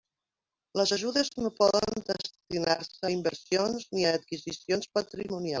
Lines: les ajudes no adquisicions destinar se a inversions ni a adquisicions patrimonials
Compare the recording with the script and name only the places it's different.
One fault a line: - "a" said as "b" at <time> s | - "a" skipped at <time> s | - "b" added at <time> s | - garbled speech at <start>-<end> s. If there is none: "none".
- "adquisicions" said as "poden" at 1.6 s